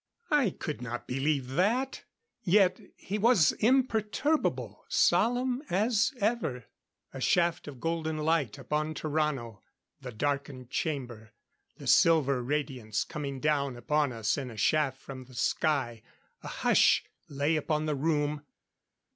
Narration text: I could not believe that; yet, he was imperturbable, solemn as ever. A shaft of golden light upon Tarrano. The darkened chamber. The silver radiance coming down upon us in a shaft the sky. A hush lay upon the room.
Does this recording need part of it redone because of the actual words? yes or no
yes